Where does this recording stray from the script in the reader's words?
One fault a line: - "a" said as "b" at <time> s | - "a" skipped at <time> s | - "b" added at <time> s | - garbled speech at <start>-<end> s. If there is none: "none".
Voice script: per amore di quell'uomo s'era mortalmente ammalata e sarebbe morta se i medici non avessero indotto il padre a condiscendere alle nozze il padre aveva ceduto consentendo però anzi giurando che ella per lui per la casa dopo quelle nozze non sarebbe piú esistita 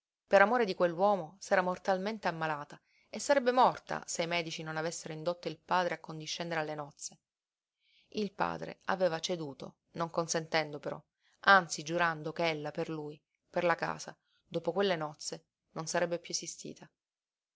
- "non" added at 9.9 s